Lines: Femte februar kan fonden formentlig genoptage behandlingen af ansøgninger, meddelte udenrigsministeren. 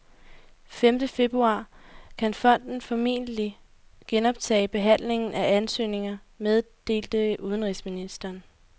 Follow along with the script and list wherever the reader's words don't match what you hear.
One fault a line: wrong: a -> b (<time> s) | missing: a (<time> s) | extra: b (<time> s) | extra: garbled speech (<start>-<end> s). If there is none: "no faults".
no faults